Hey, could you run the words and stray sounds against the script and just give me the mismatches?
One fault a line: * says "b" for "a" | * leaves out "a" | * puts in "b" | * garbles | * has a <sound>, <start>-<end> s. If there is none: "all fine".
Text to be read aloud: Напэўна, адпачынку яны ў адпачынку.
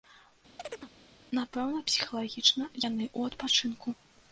* has a chirp, 0.6-0.9 s
* says "псіхалагічна" for "адпачынку"